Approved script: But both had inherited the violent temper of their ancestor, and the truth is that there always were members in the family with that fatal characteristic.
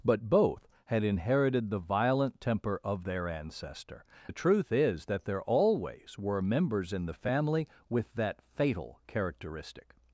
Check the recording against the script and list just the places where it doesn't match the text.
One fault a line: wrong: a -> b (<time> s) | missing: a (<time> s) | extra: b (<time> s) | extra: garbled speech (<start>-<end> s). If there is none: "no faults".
missing: and (4.0 s)